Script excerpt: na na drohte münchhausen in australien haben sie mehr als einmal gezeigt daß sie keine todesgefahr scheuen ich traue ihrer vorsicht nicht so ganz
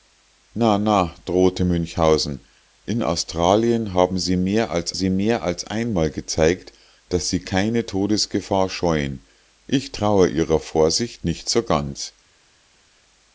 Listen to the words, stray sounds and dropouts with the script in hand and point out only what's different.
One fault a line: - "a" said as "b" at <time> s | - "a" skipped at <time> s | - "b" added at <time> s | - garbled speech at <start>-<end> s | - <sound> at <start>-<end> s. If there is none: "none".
- "sie mehr als" added at 4.9 s